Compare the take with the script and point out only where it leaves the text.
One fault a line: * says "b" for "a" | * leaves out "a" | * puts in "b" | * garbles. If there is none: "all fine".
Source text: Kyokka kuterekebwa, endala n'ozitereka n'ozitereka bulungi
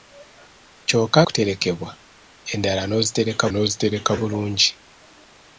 all fine